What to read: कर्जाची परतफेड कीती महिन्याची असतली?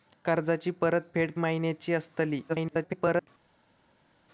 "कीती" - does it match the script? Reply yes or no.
no